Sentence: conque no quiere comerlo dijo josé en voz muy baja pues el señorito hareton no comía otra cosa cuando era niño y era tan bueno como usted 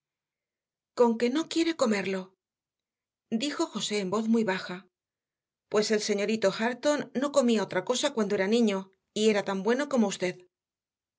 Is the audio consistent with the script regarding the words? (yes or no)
yes